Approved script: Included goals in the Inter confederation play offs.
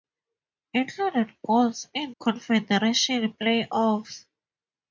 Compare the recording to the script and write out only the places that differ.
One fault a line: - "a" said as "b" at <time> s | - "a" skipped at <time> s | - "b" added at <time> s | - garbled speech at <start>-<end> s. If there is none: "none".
- "the Inter" skipped at 2.1 s